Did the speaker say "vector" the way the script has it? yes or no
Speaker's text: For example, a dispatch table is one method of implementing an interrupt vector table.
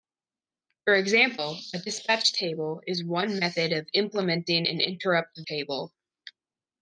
no